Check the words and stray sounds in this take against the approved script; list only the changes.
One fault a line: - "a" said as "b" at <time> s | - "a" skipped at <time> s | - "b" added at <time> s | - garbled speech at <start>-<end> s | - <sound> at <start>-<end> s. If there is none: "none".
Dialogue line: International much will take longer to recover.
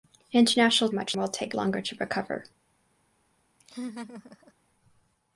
- laugh at 3.6-4.5 s